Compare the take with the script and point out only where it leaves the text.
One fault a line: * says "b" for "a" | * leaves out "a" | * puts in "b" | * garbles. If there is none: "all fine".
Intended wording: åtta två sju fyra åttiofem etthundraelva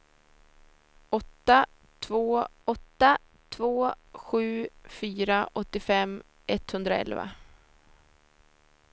* puts in "åtta två"